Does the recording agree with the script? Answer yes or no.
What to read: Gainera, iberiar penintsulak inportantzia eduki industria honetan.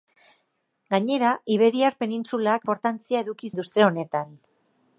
yes